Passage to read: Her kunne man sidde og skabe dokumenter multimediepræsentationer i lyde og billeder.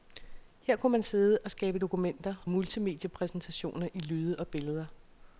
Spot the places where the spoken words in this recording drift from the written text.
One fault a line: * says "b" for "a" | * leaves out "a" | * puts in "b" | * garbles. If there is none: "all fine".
all fine